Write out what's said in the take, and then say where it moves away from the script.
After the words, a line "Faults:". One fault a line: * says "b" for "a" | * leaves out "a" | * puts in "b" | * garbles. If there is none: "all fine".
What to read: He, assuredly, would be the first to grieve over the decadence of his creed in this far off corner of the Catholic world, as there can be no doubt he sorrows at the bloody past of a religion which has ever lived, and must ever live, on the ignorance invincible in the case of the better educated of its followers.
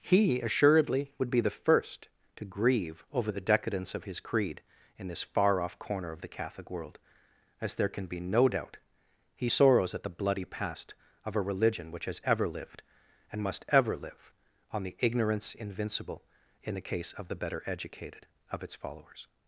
He, assuredly, would be the first to grieve over the decadence of his creed in this far off corner of the Catholic world, as there can be no doubt he sorrows at the bloody past of a religion which has ever lived, and must ever live, on the ignorance invincible in the case of the better educated of its followers.
Faults:
all fine